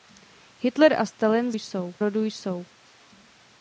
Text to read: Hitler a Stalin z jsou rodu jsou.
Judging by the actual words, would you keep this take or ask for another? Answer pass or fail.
pass